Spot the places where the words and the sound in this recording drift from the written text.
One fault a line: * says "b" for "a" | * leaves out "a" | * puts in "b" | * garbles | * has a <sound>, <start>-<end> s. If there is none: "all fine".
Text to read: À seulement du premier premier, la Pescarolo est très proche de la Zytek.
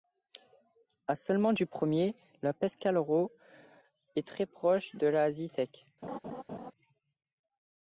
* leaves out "premier"
* has a laugh, 6.0-6.7 s